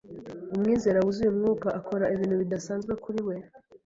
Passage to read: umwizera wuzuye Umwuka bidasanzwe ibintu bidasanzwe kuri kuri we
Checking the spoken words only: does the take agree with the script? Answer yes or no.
no